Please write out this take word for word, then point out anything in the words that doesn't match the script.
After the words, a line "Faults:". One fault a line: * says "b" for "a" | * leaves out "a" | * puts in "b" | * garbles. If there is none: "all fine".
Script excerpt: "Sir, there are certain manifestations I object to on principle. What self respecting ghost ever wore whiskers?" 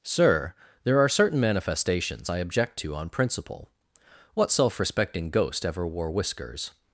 "Sir, there are certain manifestations I object to on principle. What self respecting ghost ever wore whiskers?"
Faults:
all fine